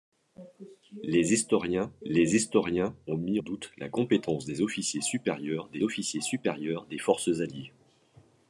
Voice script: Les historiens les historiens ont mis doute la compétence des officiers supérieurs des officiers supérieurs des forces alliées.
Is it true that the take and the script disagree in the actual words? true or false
false